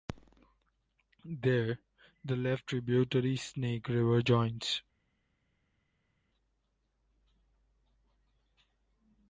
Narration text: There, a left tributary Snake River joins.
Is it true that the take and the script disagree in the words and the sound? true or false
true